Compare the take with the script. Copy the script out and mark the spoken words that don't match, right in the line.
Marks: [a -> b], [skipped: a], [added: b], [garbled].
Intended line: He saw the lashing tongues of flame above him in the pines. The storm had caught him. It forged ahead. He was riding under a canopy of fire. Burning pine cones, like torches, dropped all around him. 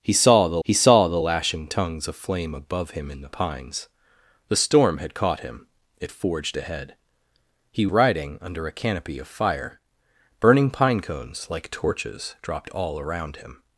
He saw the [added: he saw the] lashing tongues of flame above him in the pines. The storm had caught him. It forged ahead. He [skipped: was] riding under a canopy of fire. Burning pine cones, like torches, dropped all around him.